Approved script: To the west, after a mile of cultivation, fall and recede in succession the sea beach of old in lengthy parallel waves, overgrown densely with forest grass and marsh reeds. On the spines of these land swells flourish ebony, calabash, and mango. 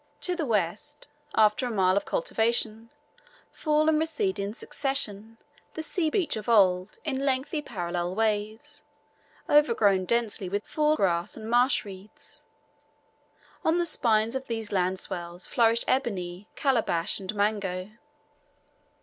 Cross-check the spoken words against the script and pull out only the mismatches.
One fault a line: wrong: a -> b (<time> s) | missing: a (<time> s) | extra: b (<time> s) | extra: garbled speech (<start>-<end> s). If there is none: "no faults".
wrong: forest -> fall (10.6 s)